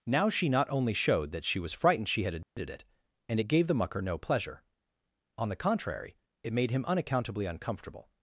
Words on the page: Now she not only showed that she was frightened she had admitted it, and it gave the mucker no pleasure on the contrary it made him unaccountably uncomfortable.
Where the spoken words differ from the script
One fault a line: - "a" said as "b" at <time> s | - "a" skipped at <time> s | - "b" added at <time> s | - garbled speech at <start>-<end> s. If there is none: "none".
none